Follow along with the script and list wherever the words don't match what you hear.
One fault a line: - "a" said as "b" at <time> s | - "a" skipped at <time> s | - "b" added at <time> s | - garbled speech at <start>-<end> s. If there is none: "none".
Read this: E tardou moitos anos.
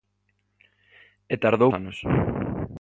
- "moitos" skipped at 1.7 s